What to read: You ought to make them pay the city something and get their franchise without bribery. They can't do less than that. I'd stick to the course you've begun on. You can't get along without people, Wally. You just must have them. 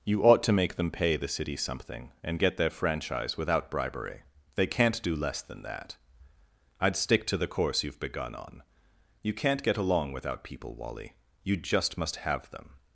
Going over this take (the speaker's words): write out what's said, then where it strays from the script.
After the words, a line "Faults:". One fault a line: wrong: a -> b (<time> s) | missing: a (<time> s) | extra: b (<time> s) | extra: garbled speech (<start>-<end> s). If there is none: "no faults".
You ought to make them pay the city something and get their franchise without bribery. They can't do less than that. I'd stick to the course you've begun on. You can't get along without people, Wally. You just must have them.
Faults:
no faults